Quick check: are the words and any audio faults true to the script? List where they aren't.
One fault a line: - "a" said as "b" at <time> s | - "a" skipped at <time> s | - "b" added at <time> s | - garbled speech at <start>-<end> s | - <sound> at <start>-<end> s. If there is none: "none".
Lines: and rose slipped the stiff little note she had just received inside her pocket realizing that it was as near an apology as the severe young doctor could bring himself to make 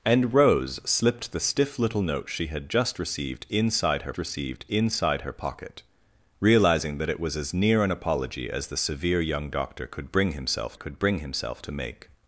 - "received inside her" added at 4.2 s
- "could bring himself" added at 10.7 s